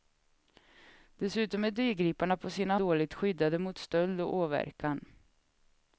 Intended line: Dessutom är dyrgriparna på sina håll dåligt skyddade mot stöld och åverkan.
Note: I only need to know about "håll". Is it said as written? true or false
false